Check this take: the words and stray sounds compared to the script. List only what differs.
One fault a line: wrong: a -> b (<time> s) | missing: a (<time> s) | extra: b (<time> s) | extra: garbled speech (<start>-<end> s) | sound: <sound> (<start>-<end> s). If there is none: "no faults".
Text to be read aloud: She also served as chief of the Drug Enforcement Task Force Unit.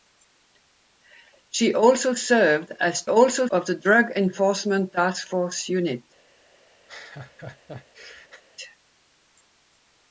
wrong: chief -> also (3.1 s)
sound: laugh (6.9-8.4 s)